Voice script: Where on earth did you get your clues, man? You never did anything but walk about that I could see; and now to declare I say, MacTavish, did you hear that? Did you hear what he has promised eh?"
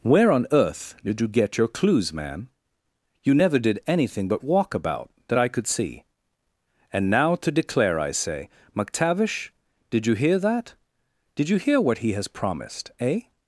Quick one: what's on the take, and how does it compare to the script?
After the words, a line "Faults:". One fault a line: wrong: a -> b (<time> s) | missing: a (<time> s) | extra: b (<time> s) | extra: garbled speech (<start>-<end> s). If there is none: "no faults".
Where on earth did you get your clues, man? You never did anything but walk about that I could see; and now to declare I say, MacTavish, did you hear that? Did you hear what he has promised eh?"
Faults:
no faults